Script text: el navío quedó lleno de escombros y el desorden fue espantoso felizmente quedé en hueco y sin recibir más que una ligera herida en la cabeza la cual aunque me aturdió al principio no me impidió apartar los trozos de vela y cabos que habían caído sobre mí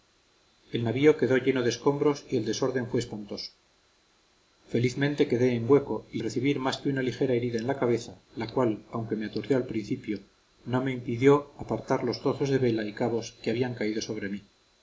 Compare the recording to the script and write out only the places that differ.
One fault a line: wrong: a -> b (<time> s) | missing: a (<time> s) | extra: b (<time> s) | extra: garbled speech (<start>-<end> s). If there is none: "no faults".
missing: sin (6.2 s)